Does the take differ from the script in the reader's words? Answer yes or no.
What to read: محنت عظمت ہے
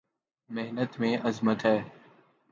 yes